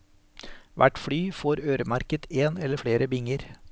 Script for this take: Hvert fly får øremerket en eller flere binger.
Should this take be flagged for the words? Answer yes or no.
no